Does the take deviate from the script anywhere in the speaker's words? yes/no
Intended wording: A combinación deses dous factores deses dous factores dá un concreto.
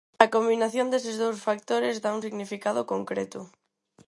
yes